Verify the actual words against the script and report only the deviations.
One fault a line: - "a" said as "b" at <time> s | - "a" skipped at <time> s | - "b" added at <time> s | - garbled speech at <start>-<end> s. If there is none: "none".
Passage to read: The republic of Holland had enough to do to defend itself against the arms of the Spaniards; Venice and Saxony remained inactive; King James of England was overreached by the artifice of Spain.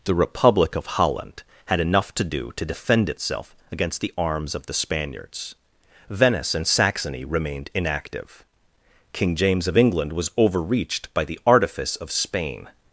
none